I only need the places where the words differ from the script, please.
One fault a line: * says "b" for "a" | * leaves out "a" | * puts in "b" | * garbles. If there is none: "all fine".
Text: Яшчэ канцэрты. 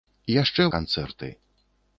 all fine